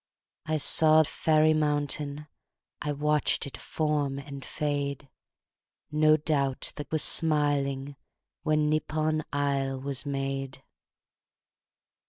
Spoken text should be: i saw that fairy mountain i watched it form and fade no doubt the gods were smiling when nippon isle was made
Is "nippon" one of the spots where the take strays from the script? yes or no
no